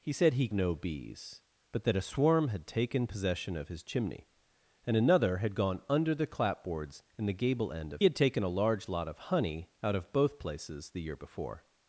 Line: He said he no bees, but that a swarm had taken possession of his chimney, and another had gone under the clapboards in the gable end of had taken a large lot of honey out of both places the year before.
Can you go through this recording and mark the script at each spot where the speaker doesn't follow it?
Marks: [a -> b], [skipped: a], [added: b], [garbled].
He said he no bees, but that a swarm had taken possession of his chimney, and another had gone under the clapboards in the gable end of had taken a large lot of honey out of both places the year before.